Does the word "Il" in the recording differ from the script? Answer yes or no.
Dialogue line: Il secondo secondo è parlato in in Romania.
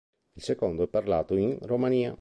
no